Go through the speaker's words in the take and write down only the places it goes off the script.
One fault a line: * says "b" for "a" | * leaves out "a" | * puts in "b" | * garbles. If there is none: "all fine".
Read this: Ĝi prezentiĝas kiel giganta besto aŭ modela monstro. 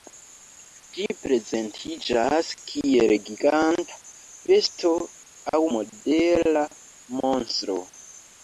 all fine